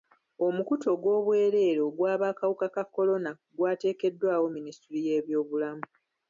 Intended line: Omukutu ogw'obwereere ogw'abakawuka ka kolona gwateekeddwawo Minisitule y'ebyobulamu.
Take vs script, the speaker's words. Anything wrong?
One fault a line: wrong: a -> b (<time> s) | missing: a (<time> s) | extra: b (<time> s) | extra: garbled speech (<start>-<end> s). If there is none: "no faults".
no faults